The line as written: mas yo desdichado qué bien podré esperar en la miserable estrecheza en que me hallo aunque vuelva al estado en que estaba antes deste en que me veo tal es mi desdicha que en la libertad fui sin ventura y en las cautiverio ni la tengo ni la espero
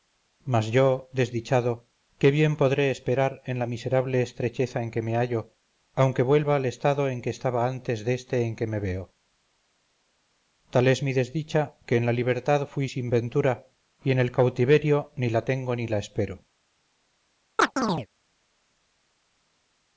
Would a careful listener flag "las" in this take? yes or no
yes